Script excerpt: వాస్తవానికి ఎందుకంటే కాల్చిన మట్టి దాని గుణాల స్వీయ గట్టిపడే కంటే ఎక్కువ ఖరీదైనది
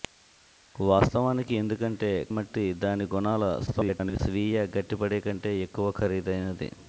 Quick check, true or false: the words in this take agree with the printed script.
false